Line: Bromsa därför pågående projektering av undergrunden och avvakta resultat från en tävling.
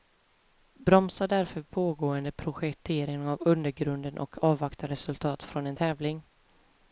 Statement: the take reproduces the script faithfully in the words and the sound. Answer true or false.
true